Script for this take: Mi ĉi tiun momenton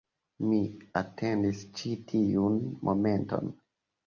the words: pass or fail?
fail